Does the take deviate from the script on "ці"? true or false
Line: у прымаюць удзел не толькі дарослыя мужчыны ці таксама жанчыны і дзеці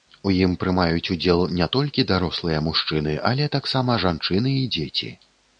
true